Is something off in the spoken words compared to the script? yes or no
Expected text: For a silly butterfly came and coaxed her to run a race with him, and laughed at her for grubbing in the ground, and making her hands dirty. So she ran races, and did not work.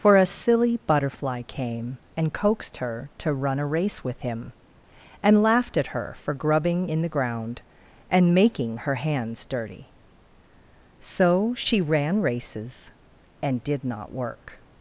no